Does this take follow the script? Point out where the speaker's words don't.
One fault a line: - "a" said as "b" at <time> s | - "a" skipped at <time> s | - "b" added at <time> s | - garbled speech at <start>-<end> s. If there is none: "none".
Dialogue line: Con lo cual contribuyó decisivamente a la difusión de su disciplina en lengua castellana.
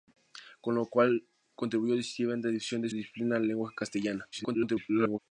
- "su" skipped at 2.9 s
- garbled speech at 4.3-5.2 s